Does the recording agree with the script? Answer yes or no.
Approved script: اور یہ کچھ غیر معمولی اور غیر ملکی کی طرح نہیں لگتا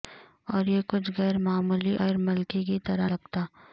no